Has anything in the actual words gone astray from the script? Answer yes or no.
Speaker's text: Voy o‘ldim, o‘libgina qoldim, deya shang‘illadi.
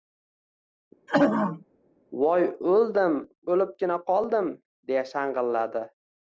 no